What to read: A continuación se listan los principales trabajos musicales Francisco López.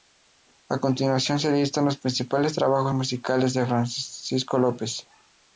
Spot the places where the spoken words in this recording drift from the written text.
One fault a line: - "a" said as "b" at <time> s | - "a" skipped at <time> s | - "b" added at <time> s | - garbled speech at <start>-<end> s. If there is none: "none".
- "de" added at 3.5 s